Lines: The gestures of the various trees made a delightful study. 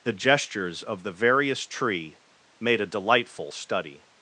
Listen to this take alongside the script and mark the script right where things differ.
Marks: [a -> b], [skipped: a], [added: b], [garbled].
The gestures of the various [trees -> tree] made a delightful study.